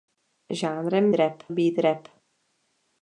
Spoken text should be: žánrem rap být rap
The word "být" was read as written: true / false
true